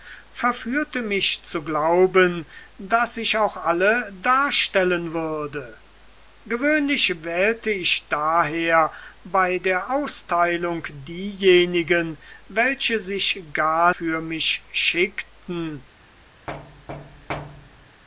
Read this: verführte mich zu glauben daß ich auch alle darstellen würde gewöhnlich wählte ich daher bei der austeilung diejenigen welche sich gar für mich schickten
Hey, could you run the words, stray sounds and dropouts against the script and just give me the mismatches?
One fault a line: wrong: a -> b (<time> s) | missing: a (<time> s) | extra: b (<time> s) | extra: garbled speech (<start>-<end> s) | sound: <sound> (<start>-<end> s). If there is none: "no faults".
sound: thud (16.5-18.0 s)